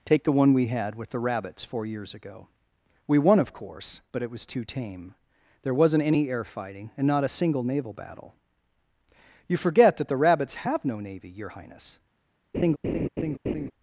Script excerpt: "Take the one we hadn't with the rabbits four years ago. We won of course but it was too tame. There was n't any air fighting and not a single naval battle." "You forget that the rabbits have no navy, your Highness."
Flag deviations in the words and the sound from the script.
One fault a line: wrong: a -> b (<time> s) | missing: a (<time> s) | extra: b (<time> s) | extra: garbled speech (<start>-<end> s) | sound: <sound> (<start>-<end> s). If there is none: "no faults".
wrong: hadn't -> had (0.7 s)
sound: laugh (12.5-13.7 s)